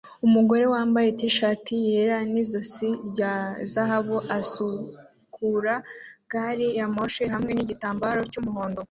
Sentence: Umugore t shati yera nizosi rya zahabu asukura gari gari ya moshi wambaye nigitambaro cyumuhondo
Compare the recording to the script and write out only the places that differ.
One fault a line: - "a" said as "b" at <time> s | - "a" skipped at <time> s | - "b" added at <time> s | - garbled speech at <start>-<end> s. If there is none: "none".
- "wambaye" added at 0.7 s
- "gari" skipped at 6.7 s
- "wambaye" said as "hamwe" at 7.3 s